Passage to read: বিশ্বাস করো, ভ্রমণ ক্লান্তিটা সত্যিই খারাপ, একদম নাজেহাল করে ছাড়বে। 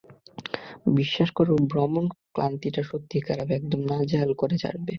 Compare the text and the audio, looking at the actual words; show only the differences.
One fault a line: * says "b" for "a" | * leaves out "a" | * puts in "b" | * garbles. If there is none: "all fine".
all fine